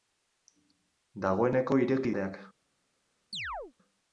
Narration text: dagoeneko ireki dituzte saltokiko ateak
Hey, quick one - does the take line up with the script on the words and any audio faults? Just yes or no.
no